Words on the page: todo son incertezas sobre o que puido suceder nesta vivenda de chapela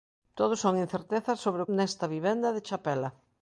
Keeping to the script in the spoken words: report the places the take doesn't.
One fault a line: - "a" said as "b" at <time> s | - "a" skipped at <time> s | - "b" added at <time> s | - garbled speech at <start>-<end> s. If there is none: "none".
- "que puido suceder" skipped at 1.7 s